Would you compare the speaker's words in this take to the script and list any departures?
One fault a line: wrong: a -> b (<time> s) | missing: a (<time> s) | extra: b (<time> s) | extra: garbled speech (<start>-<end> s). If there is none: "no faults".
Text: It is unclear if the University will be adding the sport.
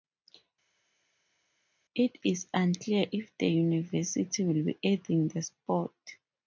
no faults